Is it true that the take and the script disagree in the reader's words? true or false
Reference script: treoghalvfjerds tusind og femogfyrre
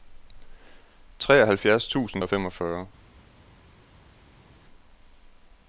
false